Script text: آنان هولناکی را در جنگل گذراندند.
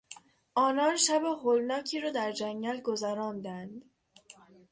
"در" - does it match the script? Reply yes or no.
yes